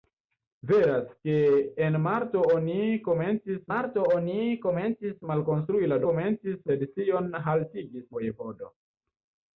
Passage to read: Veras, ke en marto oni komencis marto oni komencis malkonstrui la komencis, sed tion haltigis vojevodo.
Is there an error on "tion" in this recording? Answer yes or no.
no